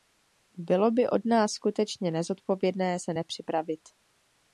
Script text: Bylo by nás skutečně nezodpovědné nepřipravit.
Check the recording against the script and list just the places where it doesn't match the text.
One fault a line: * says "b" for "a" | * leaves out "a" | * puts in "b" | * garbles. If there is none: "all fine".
* puts in "od"
* puts in "se"